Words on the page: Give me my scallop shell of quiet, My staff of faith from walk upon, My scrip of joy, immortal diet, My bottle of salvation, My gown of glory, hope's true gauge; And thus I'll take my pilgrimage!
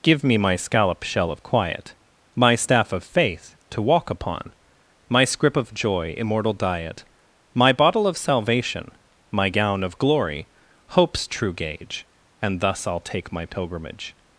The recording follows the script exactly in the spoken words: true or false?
false